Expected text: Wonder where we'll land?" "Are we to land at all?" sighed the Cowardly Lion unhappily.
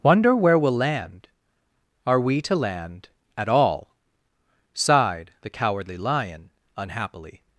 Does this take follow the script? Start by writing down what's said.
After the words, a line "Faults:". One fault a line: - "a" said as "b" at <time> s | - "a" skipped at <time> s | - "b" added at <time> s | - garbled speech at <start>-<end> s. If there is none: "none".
Wonder where we'll land?" "Are we to land at all?" sighed the Cowardly Lion unhappily.
Faults:
none